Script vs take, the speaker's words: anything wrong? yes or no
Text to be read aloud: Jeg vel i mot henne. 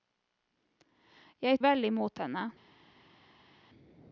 no